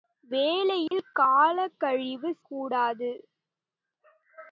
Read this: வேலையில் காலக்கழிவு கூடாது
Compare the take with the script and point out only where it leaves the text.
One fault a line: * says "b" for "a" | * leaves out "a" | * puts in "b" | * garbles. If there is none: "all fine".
all fine